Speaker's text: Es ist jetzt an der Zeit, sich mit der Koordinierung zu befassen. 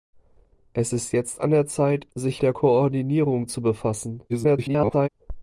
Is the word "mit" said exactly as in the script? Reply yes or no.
no